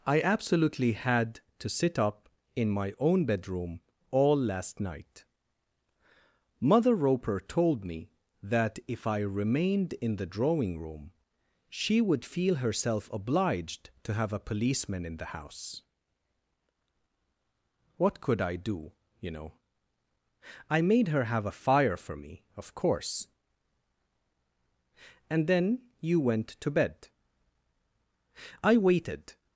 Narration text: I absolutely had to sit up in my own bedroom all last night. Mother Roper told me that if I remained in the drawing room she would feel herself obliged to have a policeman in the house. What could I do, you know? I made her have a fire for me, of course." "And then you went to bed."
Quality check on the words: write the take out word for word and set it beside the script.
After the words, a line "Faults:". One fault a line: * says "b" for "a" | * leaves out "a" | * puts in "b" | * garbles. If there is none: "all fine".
I absolutely had to sit up in my own bedroom all last night. Mother Roper told me that if I remained in the drawing room she would feel herself obliged to have a policeman in the house. What could I do, you know? I made her have a fire for me, of course." "And then you went to bed." "I waited
Faults:
* puts in "I waited"